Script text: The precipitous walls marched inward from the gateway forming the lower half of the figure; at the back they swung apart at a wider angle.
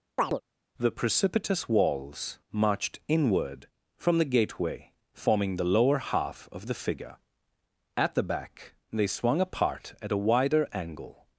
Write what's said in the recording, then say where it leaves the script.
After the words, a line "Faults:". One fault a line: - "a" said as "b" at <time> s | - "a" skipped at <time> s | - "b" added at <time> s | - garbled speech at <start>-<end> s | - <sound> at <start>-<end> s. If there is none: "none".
The precipitous walls marched inward from the gateway forming the lower half of the figure; at the back they swung apart at a wider angle.
Faults:
- chirp at 0.2-0.4 s